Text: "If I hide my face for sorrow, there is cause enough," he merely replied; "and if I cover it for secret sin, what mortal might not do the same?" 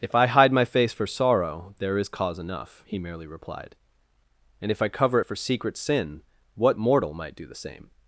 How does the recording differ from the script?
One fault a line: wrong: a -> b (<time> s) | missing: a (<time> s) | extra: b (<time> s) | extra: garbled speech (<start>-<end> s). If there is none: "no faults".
missing: not (7.4 s)